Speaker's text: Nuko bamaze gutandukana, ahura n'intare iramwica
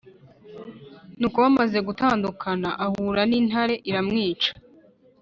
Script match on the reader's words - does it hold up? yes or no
yes